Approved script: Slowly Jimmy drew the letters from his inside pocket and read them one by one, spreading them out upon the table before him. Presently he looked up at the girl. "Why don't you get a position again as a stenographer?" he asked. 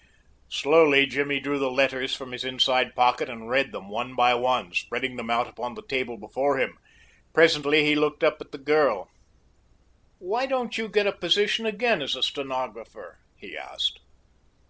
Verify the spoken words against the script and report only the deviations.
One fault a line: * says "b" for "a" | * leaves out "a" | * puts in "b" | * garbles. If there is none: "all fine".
all fine